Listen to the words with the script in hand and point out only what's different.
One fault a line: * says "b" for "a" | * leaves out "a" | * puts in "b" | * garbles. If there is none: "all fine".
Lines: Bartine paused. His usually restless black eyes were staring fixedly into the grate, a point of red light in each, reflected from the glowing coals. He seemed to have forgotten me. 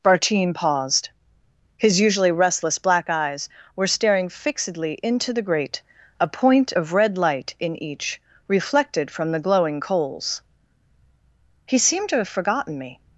all fine